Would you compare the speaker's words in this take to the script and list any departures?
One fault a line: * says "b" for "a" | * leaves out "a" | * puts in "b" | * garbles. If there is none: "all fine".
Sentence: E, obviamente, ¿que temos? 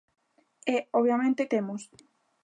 * leaves out "que"